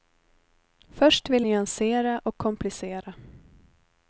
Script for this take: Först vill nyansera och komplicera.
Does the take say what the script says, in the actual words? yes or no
yes